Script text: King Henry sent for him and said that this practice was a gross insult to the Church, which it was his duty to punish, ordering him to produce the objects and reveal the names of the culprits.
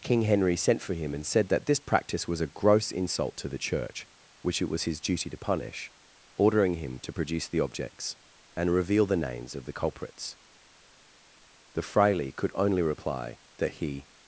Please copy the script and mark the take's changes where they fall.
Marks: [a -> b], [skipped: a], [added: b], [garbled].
King Henry sent for him and said that this practice was a gross insult to the Church, which it was his duty to punish, ordering him to produce the objects and reveal the names of the culprits. [added: The fraile could only reply that he]